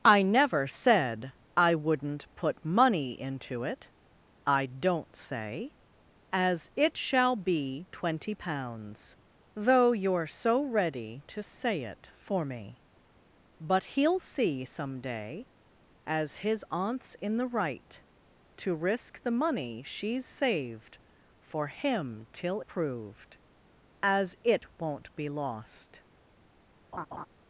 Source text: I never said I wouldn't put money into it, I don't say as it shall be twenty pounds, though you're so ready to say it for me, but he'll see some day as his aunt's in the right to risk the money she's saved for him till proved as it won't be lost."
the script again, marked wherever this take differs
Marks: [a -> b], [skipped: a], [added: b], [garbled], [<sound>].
I never said I wouldn't put money into it, I don't say as it shall be twenty pounds, though you're so ready to say it for me, but he'll see some day as his aunt's in the right to risk the money she's saved for him till proved as it won't be lost." [laugh]